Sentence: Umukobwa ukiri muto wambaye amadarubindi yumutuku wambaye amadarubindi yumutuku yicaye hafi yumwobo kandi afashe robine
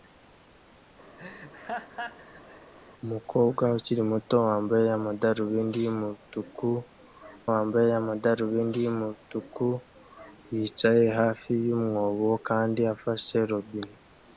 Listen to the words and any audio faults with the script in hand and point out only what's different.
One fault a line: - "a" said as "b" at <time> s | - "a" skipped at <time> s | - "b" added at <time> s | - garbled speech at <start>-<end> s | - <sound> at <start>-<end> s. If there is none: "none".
- laugh at 1.2-2.7 s